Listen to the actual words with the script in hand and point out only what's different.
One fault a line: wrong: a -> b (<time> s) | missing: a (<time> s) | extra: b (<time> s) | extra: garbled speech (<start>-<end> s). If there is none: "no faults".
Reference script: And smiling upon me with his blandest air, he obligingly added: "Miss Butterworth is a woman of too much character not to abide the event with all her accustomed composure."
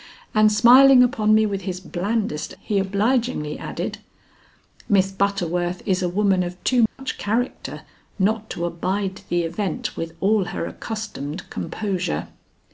missing: air (2.5 s)